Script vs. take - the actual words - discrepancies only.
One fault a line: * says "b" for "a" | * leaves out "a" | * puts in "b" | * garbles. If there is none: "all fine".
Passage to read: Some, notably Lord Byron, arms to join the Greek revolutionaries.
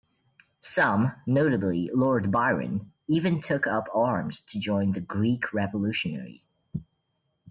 * puts in "even took up"